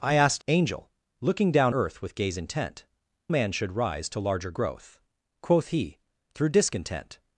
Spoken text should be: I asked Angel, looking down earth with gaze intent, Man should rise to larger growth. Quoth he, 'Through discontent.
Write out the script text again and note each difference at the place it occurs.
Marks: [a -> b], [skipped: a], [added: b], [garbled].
I asked Angel, looking down earth with gaze intent, Man should rise to larger growth. Quoth he, 'Through discontent.